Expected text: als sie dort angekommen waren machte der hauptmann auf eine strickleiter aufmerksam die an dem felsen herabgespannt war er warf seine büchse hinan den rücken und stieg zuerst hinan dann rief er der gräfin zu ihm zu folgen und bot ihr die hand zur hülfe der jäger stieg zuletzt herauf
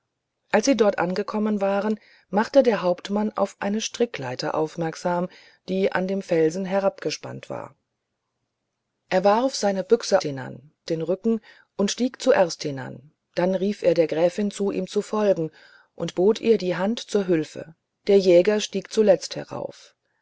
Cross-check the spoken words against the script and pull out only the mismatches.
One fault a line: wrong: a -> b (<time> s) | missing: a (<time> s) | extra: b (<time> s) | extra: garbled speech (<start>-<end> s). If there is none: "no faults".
no faults